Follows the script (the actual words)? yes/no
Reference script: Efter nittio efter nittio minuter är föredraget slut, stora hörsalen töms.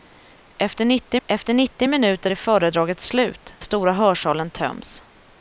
yes